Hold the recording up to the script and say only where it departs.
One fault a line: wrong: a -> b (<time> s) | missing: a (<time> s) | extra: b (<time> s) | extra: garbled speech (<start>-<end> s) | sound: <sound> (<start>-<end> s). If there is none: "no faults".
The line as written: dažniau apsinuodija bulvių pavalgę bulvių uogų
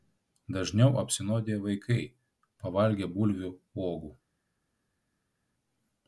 wrong: bulvių -> vaikai (1.7 s)